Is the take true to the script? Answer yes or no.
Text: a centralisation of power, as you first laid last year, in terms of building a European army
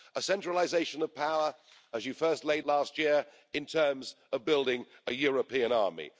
yes